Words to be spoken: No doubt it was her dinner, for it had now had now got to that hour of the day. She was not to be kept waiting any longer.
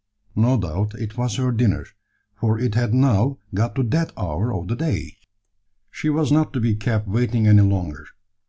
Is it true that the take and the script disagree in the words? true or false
true